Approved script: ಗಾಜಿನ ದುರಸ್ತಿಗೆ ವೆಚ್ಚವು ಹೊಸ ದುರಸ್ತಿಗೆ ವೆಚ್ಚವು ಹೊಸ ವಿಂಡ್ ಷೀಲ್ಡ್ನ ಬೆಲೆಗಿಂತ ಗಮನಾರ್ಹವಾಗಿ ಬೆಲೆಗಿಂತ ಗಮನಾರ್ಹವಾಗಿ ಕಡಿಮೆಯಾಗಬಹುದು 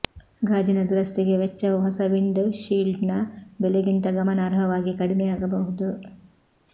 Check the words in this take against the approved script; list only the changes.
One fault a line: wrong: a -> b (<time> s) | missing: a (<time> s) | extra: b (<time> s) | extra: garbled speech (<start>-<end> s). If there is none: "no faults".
missing: ದುರಸ್ತಿಗೆ ವೆಚ್ಚವು ಹೊಸ (2.0 s)
missing: ಬೆಲೆಗಿಂತ ಗಮನಾರ್ಹವಾಗಿ (4.9 s)